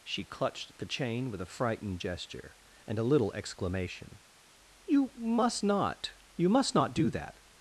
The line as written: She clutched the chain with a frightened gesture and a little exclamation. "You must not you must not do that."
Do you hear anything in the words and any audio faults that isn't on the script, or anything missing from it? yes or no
no